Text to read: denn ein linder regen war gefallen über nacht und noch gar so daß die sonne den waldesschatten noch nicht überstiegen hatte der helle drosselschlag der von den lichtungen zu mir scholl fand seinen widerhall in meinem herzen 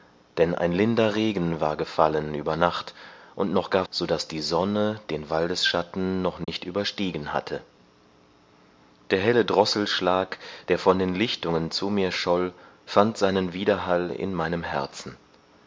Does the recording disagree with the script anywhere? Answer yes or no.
no